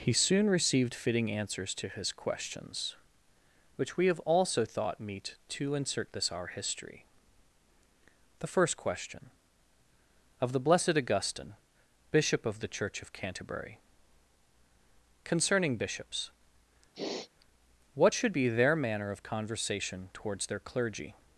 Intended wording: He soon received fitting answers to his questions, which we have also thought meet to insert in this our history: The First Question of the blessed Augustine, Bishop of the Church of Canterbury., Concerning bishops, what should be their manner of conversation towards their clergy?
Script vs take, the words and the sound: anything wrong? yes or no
yes